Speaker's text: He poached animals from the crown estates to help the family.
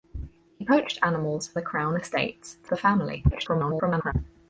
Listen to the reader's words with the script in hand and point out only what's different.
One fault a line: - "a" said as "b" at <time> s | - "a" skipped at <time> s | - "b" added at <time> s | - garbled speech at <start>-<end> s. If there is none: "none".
- "from" skipped at 1.5 s
- "help" skipped at 2.7 s
- garbled speech at 3.3-4.1 s